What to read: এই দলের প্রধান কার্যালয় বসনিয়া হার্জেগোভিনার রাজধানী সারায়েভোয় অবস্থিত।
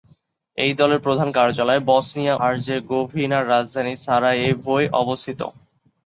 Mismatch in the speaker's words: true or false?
false